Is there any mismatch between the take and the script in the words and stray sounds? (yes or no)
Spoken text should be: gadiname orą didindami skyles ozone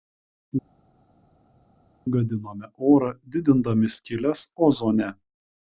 no